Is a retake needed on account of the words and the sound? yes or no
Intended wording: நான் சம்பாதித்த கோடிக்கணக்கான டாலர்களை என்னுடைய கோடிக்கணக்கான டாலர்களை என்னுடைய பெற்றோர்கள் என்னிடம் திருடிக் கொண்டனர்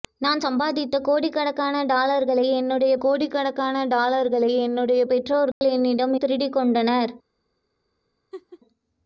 yes